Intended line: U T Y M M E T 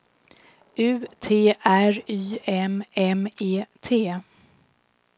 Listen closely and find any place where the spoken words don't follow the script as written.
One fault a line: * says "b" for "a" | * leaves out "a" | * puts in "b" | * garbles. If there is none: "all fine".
* puts in "R"